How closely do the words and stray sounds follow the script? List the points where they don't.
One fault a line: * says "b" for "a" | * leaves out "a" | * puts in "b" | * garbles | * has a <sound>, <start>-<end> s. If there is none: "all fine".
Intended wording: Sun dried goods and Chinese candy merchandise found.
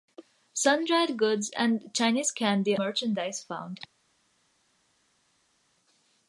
all fine